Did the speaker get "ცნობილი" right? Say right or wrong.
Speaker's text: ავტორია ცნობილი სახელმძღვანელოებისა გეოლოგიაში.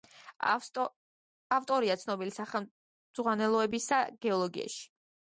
right